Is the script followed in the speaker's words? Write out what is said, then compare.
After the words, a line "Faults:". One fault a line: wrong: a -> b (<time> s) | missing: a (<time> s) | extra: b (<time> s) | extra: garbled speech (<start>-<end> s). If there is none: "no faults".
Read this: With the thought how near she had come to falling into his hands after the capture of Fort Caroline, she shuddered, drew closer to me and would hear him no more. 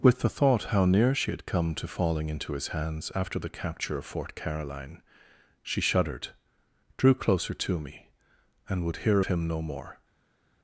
With the thought how near she had come to falling into his hands after the capture of Fort Caroline, she shuddered, drew closer to me and would hear him no more.
Faults:
no faults